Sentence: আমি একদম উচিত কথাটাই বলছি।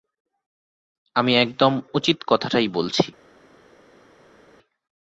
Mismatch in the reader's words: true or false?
false